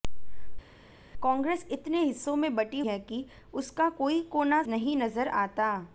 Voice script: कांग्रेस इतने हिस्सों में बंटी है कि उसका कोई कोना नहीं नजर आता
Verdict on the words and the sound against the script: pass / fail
pass